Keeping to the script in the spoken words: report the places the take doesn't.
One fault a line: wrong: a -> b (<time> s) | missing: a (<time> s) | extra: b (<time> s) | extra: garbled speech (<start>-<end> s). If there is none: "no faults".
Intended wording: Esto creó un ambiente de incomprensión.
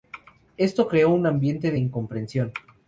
no faults